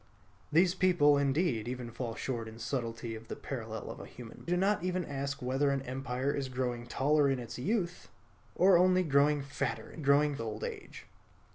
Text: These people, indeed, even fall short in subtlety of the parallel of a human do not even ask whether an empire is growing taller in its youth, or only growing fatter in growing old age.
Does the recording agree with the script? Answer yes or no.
yes